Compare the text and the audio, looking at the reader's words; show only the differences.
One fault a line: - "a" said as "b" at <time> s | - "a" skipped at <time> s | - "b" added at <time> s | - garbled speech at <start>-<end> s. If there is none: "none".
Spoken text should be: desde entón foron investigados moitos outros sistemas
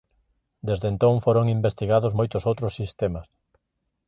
none